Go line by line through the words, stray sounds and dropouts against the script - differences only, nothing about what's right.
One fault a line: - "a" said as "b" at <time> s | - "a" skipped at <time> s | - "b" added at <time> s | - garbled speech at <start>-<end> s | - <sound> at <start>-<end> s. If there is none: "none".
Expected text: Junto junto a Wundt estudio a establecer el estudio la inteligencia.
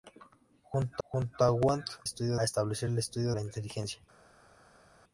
none